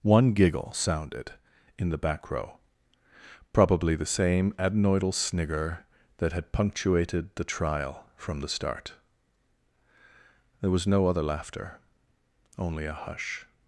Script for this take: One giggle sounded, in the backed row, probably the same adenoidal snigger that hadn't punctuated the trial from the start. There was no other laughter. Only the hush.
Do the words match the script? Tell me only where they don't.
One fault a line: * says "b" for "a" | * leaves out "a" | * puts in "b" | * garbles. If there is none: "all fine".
* says "back" for "backed"
* says "had" for "hadn't"
* says "a" for "the"